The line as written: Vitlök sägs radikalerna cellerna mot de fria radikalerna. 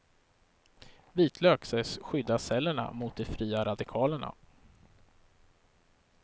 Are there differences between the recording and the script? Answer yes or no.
yes